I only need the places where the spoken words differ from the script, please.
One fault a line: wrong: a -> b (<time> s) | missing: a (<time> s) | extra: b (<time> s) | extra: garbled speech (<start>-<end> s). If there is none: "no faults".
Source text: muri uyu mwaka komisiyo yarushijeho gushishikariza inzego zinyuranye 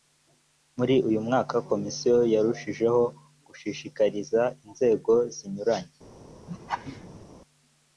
no faults